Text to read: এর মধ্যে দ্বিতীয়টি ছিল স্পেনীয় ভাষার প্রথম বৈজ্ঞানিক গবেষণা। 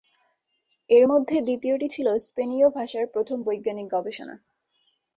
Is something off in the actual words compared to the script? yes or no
no